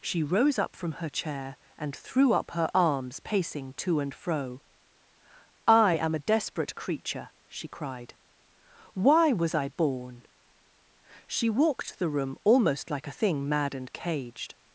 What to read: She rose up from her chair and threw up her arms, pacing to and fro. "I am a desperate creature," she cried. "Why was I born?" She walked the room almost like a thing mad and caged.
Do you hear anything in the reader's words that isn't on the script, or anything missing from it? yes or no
no